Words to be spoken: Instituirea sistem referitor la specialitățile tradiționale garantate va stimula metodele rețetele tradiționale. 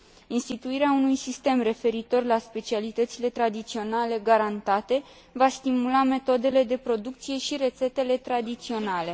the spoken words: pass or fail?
fail